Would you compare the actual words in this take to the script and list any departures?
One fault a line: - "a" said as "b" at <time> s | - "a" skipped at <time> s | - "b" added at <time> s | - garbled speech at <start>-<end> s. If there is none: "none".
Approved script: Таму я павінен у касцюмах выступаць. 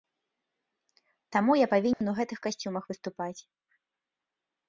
- "гэтых" added at 2.2 s